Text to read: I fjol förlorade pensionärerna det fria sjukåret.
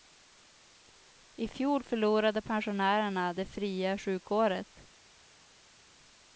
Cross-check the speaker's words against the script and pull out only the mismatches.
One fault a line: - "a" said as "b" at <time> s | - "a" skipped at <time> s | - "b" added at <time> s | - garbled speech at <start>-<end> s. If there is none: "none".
none